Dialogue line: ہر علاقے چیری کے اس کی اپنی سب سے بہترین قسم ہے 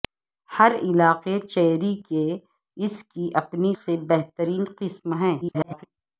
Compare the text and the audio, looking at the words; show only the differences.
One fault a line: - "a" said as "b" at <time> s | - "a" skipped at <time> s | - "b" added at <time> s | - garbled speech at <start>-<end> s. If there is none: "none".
- "سب" skipped at 3.7 s
- garbled speech at 5.4-5.8 s